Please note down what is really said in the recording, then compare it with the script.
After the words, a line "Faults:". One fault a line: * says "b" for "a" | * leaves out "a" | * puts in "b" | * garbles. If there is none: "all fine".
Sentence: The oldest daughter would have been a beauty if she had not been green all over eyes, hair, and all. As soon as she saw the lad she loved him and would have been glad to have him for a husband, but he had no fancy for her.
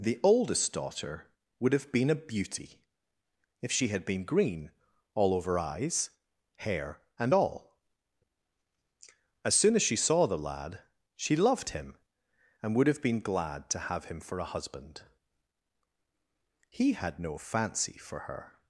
The oldest daughter would have been a beauty if she had been green all over eyes, hair, and all. As soon as she saw the lad she loved him and would have been glad to have him for a husband, he had no fancy for her.
Faults:
* leaves out "not"
* leaves out "but"